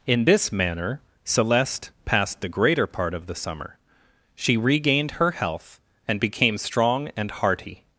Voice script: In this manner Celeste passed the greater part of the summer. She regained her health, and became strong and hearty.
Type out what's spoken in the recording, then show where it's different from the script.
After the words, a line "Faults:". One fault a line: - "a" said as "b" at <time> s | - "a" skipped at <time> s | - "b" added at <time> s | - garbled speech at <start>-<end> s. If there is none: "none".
In this manner Celeste passed the greater part of the summer. She regained her health, and became strong and hearty.
Faults:
none